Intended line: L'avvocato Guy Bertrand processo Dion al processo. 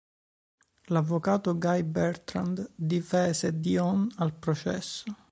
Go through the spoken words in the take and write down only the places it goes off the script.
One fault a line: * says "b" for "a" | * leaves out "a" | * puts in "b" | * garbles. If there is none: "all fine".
* says "difese" for "processo"